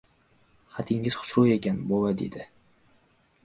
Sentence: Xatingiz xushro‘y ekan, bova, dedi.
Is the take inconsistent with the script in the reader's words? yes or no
no